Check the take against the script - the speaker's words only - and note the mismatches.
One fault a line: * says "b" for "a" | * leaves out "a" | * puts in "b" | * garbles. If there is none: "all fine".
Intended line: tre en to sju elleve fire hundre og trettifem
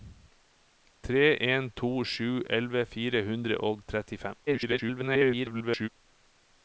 * garbles